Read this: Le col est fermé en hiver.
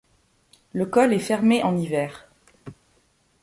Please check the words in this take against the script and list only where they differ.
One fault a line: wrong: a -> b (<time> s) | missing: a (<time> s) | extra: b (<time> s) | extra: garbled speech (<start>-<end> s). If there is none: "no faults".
no faults